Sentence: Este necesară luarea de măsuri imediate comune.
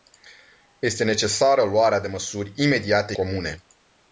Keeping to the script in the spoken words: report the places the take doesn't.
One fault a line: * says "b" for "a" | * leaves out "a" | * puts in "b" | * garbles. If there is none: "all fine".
all fine